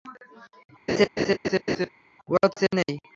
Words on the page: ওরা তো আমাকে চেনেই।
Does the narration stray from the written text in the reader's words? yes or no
yes